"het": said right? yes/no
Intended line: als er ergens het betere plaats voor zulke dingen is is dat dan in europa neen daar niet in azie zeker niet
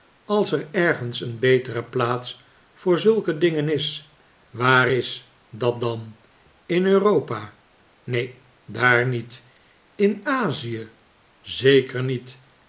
no